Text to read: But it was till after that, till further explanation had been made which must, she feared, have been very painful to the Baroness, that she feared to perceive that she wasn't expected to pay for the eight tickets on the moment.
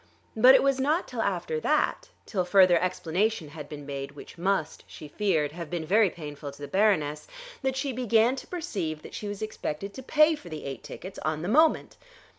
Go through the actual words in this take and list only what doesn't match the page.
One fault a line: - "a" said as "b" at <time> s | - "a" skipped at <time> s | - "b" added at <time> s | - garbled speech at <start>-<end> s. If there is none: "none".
- "not" added at 0.8 s
- "feared" said as "began" at 7.9 s
- "wasn't" said as "was" at 9.3 s